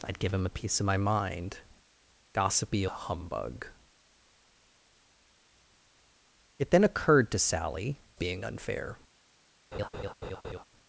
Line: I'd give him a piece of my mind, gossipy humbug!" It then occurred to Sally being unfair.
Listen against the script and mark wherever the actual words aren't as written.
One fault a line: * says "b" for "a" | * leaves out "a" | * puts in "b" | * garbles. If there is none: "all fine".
all fine